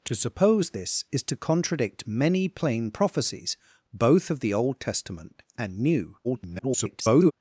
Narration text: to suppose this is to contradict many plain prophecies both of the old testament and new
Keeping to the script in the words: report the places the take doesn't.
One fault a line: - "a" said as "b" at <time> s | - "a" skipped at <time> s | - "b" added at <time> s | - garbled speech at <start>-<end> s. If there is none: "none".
- garbled speech at 6.2-7.3 s